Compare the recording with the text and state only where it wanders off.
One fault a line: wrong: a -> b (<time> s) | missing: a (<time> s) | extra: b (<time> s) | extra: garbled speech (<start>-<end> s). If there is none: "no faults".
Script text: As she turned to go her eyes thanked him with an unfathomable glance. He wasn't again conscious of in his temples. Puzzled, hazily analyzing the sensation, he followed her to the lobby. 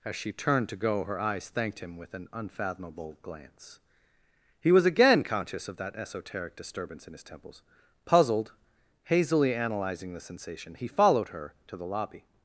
wrong: wasn't -> was (4.7 s)
extra: that esoteric disturbance (5.8 s)